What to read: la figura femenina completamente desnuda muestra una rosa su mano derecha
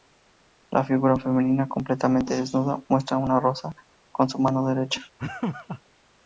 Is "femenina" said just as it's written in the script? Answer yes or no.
yes